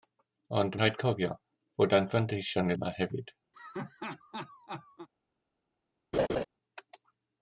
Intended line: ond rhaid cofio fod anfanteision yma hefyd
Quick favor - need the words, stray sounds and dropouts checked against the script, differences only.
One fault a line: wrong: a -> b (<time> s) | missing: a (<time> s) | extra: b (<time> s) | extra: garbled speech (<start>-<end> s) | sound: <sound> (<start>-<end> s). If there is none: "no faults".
sound: laugh (3.5-5.1 s)
sound: laugh (6.1-6.4 s)